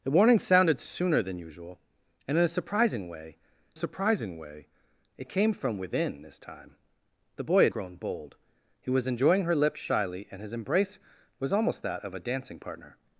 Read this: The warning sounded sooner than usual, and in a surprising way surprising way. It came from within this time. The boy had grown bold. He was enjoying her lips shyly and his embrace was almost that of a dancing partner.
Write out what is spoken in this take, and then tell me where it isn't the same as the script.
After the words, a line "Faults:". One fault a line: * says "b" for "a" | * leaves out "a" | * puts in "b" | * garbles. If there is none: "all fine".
The warning sounded sooner than usual, and in a surprising way surprising way. It came from within this time. The boy had grown bold. He was enjoying her lips shyly and his embrace was almost that of a dancing partner.
Faults:
all fine